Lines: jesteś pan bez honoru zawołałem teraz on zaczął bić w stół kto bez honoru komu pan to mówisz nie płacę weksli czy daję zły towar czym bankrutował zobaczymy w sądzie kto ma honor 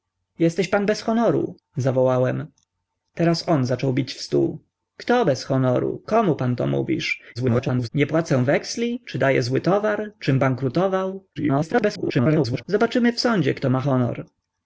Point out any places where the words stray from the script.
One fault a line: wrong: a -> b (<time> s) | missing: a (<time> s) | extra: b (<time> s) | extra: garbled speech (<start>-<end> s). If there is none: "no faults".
extra: garbled speech (7.3-7.9 s)
extra: garbled speech (11.4-12.6 s)